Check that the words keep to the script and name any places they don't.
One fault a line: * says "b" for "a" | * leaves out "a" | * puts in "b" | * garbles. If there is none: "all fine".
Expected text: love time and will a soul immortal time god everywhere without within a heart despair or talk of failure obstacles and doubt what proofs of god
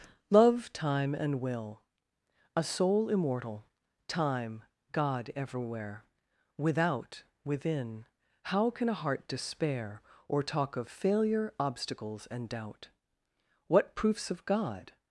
* puts in "how can"